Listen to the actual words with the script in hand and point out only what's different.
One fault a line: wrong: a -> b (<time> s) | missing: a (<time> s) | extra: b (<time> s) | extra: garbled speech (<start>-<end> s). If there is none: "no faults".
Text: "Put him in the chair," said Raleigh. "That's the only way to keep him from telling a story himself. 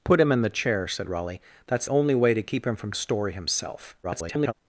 missing: the (1.9 s)
missing: telling (2.9 s)
extra: garbled speech (4.0-4.5 s)